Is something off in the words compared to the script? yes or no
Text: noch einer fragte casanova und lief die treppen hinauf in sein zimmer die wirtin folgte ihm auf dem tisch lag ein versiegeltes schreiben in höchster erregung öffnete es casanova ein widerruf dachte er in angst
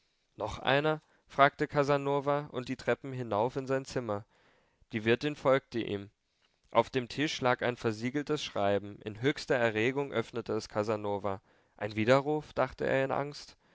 yes